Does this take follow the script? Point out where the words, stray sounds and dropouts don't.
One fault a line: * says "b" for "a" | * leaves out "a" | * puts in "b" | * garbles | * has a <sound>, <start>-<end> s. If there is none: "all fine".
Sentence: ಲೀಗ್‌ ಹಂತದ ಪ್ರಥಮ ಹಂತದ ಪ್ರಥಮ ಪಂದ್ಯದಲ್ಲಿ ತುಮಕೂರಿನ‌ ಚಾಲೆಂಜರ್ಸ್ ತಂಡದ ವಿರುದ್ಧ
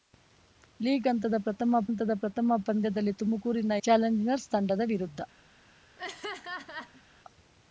* has a laugh, 6.0-7.0 s